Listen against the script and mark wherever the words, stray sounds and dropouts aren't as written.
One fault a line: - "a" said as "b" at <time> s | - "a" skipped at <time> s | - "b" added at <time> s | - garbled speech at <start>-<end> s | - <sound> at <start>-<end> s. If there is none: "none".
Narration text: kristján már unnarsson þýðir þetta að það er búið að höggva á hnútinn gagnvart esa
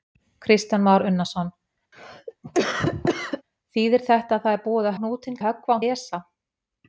- cough at 1.9-3.4 s
- "höggva" skipped at 5.0 s
- "gagnvart" said as "höggva" at 5.5 s